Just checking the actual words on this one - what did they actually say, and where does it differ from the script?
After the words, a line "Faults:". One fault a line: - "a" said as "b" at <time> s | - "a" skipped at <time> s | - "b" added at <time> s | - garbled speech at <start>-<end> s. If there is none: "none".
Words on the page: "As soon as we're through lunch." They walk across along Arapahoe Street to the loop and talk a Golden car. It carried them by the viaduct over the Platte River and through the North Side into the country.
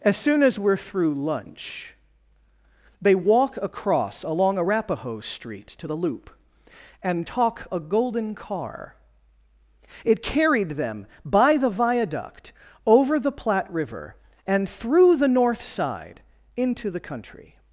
"As soon as we're through lunch." They walk across along Arapahoe Street to the loop and talk a Golden car. It carried them by the viaduct over the Platte River and through the North Side into the country.
Faults:
none